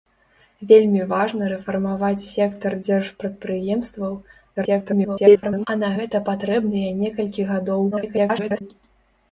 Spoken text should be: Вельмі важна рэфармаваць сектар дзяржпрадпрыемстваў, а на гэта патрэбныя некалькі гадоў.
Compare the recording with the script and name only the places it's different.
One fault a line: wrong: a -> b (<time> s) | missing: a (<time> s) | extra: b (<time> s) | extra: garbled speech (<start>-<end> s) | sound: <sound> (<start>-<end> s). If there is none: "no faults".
extra: garbled speech (4.6-5.7 s)
extra: garbled speech (7.9-8.6 s)